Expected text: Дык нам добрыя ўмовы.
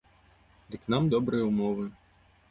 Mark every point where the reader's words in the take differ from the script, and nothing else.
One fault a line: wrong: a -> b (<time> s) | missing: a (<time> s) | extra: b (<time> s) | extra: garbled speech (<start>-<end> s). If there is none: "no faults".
no faults